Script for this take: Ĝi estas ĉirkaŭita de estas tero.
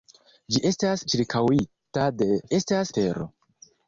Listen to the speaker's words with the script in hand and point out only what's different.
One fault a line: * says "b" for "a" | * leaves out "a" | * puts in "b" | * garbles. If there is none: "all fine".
all fine